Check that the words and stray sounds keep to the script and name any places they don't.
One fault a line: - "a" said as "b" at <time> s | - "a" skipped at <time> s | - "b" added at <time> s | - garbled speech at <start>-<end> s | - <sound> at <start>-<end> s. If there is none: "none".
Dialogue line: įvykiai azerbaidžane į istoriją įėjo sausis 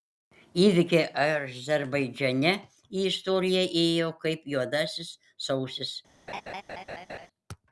- "kaip juodasis" added at 4.3 s
- laugh at 6.3-7.3 s